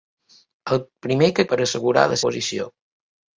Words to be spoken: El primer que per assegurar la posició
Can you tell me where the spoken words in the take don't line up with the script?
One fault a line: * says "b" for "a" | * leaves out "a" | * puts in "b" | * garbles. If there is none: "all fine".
all fine